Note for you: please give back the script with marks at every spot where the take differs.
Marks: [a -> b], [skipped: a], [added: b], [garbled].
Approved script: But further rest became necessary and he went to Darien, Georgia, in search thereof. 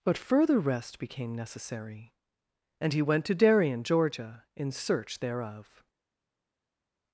But further rest became necessary and he went to Darien, Georgia, in search thereof.